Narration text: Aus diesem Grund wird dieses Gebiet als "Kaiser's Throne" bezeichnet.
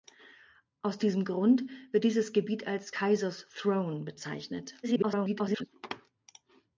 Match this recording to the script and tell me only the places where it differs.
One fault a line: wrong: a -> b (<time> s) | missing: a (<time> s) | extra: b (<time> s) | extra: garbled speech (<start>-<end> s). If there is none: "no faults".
extra: garbled speech (4.8-5.7 s)